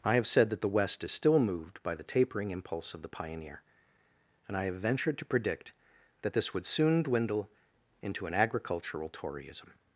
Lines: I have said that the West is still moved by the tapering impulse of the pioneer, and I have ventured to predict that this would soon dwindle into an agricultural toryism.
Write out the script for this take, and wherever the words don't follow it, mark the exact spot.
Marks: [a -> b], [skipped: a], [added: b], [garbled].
I have said that the West is still moved by the tapering impulse of the pioneer, and I have ventured to predict that this would soon dwindle into an agricultural toryism.